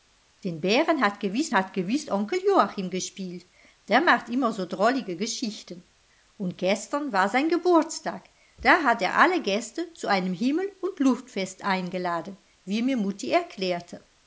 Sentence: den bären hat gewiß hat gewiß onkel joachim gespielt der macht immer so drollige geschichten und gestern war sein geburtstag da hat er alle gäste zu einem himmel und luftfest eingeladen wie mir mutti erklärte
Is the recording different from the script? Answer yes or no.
no